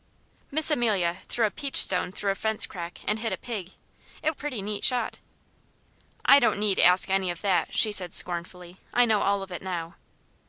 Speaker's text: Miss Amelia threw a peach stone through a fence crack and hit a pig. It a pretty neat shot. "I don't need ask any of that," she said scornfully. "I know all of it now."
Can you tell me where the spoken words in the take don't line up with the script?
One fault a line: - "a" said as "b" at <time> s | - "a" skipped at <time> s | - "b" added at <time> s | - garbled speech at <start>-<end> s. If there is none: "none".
none